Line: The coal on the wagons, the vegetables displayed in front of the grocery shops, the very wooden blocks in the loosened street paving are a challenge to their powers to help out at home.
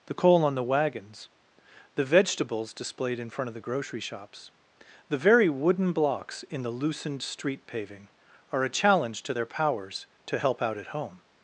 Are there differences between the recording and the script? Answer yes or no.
no